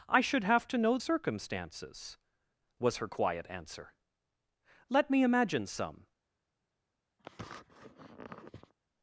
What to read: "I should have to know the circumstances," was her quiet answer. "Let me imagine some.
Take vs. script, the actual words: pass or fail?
fail